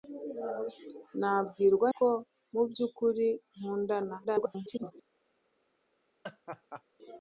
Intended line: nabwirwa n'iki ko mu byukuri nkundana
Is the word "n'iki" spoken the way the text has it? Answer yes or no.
no